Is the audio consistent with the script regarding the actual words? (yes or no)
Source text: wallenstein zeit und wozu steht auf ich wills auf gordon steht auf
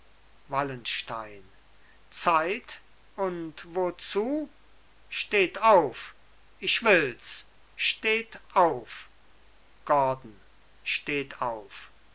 no